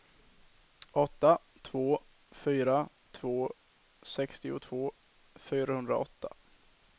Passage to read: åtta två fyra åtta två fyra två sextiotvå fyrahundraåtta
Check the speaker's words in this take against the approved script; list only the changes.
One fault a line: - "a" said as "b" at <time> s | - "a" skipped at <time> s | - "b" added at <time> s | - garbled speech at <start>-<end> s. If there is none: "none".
- "åtta två fyra" skipped at 2.9 s